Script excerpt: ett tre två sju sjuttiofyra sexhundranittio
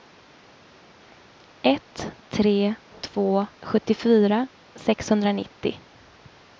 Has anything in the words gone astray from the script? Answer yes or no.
yes